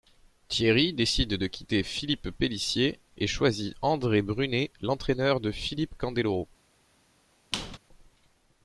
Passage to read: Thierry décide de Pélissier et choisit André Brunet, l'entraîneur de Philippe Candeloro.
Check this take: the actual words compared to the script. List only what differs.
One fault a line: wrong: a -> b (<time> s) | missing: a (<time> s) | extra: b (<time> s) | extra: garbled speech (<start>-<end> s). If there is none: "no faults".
extra: quitter Philippe (1.4 s)